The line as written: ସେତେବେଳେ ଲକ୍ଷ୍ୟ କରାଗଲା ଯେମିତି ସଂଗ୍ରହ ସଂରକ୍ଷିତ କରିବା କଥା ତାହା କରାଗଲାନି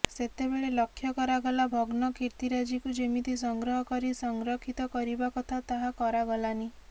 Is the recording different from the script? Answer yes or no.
yes